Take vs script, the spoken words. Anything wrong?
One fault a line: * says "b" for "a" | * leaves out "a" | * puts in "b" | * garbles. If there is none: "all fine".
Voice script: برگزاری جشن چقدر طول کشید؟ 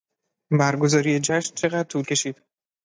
all fine